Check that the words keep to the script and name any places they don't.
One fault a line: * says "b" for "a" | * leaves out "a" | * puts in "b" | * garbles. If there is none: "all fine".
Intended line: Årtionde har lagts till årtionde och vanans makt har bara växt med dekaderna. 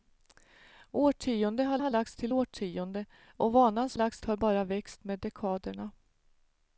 * puts in "har"
* says "lagts" for "makt"